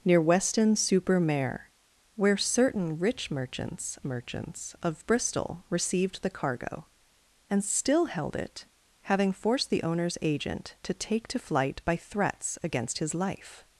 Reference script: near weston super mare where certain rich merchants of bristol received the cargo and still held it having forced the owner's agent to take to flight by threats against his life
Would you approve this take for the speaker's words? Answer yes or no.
no